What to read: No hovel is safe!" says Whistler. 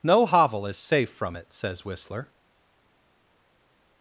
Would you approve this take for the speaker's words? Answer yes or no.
no